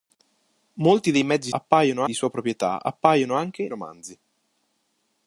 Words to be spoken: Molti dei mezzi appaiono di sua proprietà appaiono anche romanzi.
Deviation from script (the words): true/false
false